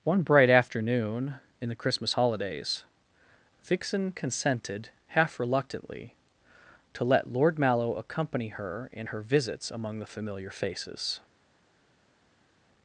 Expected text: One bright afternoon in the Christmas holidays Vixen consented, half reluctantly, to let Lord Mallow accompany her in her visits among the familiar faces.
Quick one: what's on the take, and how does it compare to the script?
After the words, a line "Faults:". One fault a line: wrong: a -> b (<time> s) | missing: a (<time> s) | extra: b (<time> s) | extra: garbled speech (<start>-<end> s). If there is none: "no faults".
One bright afternoon in the Christmas holidays Vixen consented, half reluctantly, to let Lord Mallow accompany her in her visits among the familiar faces.
Faults:
no faults